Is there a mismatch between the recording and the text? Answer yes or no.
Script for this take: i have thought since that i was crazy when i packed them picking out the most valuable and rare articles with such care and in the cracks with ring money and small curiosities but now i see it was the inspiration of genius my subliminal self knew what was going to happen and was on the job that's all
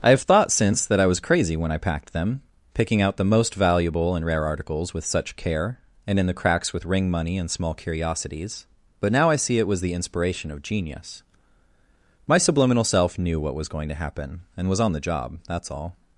no